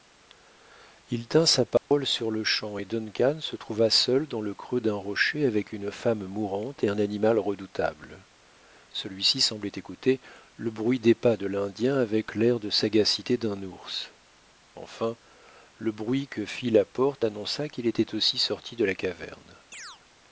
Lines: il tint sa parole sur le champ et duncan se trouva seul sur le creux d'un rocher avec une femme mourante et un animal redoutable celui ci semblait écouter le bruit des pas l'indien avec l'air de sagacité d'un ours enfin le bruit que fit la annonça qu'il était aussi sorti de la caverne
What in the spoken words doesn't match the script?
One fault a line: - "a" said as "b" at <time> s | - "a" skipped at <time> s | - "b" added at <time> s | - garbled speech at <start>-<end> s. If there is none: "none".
- "sur" said as "dans" at 4.3 s
- "de" added at 11.4 s
- "porte" added at 16.9 s